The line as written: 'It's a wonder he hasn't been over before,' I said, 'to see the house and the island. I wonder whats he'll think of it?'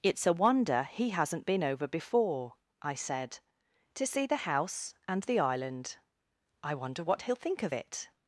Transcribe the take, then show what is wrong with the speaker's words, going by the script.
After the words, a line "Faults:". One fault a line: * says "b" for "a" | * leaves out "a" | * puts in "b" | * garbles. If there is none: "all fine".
'It's a wonder he hasn't been over before,' I said, 'to see the house and the island. I wonder what he'll think of it?'
Faults:
* says "what" for "whats"